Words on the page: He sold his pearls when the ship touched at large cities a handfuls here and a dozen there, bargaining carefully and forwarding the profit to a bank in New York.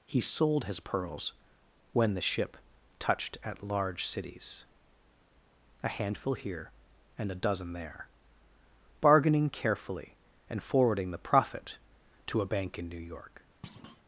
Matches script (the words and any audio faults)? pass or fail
fail